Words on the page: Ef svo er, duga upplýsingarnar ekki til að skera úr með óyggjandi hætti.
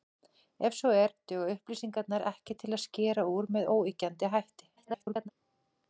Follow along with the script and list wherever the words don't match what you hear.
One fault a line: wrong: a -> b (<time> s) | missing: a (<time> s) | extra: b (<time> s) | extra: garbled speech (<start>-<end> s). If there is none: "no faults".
extra: garbled speech (4.8-5.3 s)